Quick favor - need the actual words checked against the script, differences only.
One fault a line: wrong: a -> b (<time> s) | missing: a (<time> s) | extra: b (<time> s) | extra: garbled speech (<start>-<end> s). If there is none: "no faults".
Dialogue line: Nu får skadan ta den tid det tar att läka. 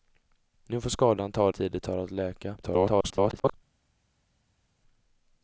missing: den (1.5 s)
extra: garbled speech (2.6-3.5 s)